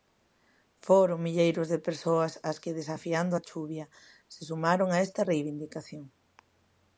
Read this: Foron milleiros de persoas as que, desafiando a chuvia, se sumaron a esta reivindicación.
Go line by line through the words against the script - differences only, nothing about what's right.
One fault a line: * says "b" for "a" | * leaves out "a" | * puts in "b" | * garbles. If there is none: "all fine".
all fine